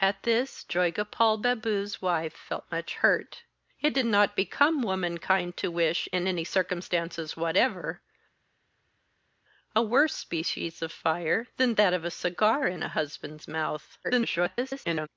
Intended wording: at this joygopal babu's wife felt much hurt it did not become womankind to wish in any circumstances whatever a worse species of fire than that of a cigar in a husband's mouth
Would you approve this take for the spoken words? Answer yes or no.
no